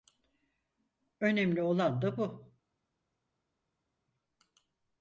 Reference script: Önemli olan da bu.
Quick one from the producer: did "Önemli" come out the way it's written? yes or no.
yes